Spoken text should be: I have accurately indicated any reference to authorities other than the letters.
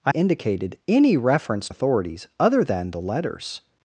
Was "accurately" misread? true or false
true